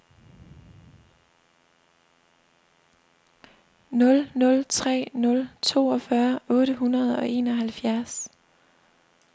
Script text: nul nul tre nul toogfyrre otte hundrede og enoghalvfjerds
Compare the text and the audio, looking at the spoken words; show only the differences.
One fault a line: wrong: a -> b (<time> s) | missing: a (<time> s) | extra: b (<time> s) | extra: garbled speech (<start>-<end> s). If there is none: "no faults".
no faults